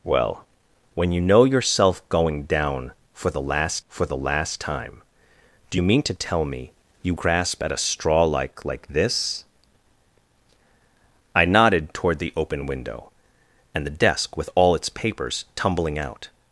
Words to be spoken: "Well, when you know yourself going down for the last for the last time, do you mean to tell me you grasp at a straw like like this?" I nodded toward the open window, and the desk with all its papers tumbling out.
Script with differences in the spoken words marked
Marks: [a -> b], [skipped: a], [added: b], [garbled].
"Well, when you know yourself going down for the last for the last time, do you mean to tell me you grasp at a straw like like this?" I nodded toward the open window, and the desk with all its papers tumbling out.